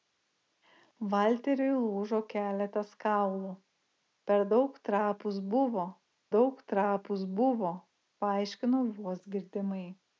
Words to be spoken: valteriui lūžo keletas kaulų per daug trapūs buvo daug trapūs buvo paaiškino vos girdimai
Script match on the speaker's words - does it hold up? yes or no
yes